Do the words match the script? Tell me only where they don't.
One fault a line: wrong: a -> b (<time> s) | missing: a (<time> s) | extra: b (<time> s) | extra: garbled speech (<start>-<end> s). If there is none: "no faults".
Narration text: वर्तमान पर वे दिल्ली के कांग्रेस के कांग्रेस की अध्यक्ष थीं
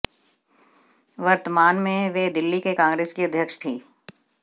wrong: पर -> में (1.8 s)
missing: के कांग्रेस (3.1 s)